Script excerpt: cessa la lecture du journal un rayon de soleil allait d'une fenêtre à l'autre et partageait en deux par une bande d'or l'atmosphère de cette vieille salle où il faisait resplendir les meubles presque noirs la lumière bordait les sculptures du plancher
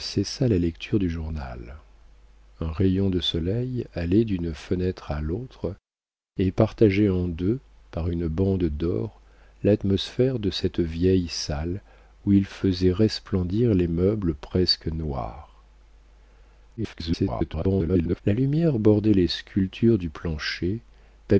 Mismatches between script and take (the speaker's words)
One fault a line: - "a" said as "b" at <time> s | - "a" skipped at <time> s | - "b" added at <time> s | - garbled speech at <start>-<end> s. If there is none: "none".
- garbled speech at 16.8-18.2 s